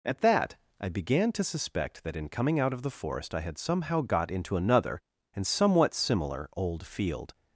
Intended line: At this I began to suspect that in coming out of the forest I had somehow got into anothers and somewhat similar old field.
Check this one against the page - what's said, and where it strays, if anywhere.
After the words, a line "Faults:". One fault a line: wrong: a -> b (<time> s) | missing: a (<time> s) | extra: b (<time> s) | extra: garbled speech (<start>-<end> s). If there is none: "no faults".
At that I began to suspect that in coming out of the forest I had somehow got into another and somewhat similar old field.
Faults:
wrong: this -> that (0.2 s)
wrong: anothers -> another (4.5 s)